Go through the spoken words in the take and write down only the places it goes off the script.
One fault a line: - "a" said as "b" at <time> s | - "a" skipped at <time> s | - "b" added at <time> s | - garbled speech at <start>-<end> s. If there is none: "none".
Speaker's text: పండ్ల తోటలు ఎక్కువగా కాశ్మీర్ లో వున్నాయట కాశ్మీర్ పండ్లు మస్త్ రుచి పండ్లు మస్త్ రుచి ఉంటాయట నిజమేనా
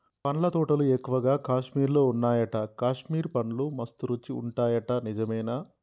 - "పండ్లు మస్త్ రుచి" skipped at 4.3 s